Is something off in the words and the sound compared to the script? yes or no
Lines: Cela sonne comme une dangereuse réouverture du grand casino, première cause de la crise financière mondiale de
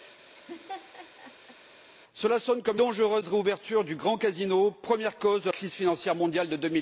yes